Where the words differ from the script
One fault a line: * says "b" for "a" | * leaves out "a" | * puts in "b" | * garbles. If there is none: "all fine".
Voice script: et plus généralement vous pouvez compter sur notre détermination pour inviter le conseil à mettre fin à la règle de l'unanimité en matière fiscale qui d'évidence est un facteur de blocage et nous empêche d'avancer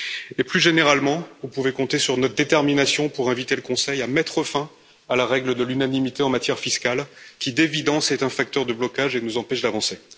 all fine